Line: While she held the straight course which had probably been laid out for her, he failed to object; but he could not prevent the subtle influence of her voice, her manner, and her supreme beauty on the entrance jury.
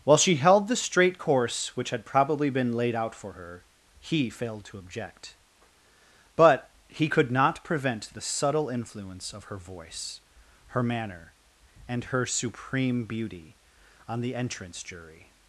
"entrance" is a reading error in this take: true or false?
false